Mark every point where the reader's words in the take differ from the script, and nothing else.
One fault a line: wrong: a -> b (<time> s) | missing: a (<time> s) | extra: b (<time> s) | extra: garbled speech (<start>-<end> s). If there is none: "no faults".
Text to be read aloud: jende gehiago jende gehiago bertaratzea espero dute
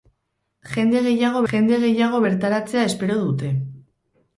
no faults